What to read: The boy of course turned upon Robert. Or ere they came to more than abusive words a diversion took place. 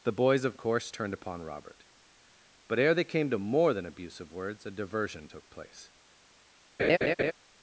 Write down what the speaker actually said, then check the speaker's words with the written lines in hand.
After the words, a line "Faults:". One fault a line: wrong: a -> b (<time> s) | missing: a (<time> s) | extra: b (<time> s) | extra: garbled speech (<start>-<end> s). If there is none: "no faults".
The boys of course turned upon Robert. But ere they came to more than abusive words a diversion took place.
Faults:
wrong: boy -> boys (0.1 s)
wrong: Or -> But (2.7 s)